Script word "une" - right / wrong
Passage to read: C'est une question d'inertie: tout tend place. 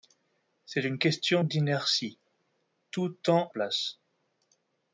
right